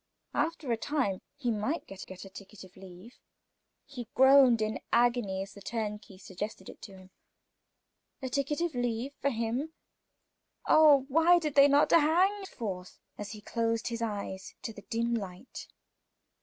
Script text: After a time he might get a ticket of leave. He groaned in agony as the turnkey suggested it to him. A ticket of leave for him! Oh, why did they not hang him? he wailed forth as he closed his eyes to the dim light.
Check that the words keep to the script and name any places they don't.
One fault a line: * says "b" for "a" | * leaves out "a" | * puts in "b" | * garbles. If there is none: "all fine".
* puts in "get"
* leaves out "him he wailed"